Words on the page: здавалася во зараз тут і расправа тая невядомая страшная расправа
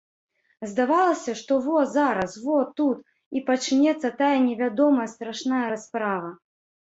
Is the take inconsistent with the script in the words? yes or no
yes